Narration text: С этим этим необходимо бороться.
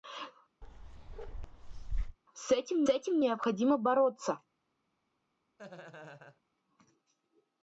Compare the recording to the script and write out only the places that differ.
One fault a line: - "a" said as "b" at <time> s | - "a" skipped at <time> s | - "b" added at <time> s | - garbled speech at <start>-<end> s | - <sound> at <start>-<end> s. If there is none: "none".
- bark at 0.6-2.2 s
- laugh at 5.6-6.4 s